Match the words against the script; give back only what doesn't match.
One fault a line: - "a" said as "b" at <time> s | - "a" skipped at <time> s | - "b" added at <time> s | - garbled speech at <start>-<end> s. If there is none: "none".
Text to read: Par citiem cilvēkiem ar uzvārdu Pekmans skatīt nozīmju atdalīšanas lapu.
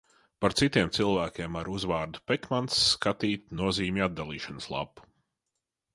none